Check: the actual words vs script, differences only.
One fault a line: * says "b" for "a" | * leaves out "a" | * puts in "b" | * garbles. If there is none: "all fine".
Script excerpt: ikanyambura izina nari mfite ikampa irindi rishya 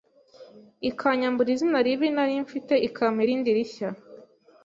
* puts in "ribi"